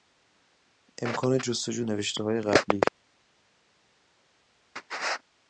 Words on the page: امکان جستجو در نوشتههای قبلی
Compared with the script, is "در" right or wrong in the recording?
wrong